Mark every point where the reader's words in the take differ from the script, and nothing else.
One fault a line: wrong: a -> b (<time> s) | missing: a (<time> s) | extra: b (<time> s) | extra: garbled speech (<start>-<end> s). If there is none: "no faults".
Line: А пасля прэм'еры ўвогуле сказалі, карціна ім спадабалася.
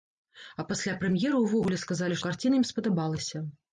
no faults